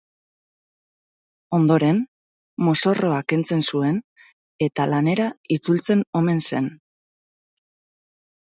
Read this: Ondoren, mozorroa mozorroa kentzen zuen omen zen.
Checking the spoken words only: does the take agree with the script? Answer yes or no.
no